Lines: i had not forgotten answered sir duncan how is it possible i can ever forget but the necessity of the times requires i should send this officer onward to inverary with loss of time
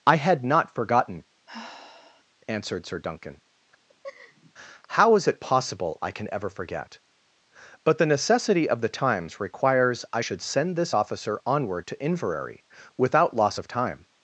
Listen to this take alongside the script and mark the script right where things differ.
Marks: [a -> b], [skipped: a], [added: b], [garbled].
i had not forgotten answered sir duncan how is it possible i can ever forget but the necessity of the times requires i should send this officer onward to inverary [with -> without] loss of time